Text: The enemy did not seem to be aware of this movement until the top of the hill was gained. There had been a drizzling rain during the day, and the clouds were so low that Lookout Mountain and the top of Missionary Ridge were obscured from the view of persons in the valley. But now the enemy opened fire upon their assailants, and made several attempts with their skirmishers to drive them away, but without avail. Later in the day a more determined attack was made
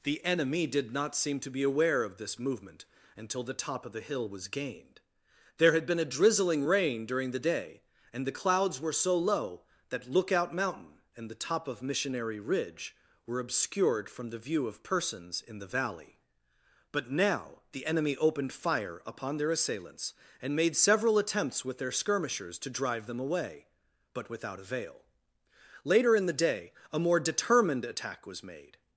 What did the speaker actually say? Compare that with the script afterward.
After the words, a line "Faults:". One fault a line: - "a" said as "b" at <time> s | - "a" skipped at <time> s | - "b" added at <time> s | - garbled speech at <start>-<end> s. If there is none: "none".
The enemy did not seem to be aware of this movement until the top of the hill was gained. There had been a drizzling rain during the day, and the clouds were so low that Lookout Mountain and the top of Missionary Ridge were obscured from the view of persons in the valley. But now the enemy opened fire upon their assailants, and made several attempts with their skirmishers to drive them away, but without avail. Later in the day a more determined attack was made
Faults:
none